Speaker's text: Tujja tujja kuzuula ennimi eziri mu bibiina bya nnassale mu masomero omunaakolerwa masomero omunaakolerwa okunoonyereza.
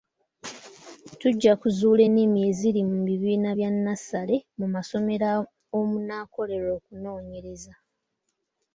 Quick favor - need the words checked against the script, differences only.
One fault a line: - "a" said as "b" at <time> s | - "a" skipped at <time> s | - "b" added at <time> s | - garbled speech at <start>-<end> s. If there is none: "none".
- "tujja" skipped at 1.5 s
- "masomero omunaakolerwa" skipped at 6.7 s